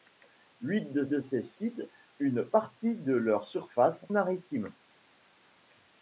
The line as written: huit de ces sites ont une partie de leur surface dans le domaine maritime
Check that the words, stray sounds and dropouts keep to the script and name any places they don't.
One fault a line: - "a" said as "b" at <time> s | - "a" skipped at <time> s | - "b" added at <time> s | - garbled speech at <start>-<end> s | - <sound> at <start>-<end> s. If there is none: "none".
- "de" added at 1.1 s
- "ont" skipped at 1.8 s
- "dans le domaine" skipped at 4.1 s